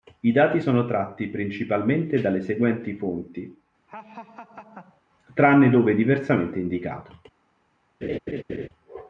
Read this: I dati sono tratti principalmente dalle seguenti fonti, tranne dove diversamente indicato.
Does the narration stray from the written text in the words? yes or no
no